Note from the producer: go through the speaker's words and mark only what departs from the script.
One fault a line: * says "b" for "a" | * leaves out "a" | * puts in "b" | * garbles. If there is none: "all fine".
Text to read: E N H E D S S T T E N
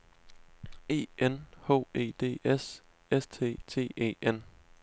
all fine